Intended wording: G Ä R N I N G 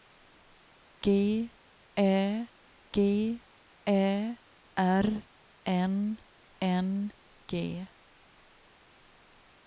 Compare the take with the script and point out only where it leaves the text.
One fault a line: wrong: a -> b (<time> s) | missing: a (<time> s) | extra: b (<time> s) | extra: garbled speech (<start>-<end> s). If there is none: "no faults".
extra: g Ä (2.9 s)
missing: I (6.2 s)